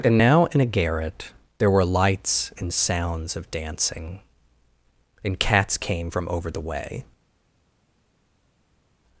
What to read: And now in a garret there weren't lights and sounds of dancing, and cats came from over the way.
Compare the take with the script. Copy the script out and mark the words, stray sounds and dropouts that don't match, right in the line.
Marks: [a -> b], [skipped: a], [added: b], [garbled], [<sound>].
And now in a garret there [weren't -> were] lights and sounds of dancing, and cats came from over the way.